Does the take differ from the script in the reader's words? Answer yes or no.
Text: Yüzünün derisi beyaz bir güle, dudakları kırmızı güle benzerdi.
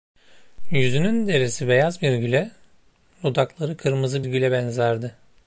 no